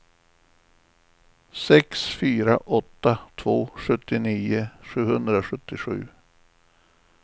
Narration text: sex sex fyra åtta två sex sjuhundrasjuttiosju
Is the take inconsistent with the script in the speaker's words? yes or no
yes